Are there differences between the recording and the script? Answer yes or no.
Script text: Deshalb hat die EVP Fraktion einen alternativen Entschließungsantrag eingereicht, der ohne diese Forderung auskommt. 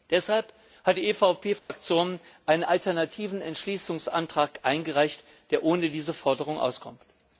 no